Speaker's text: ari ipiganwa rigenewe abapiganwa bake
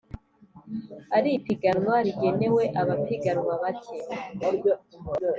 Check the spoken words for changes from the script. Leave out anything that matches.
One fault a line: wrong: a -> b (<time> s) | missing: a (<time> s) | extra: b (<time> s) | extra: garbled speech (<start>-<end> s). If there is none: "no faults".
no faults